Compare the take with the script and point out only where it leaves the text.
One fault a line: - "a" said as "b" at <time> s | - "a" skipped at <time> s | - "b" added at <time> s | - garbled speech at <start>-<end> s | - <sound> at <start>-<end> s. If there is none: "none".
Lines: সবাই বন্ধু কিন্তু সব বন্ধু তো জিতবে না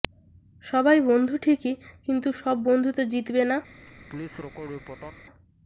- "ঠিকই" added at 1.4 s
- laugh at 3.9-5.2 s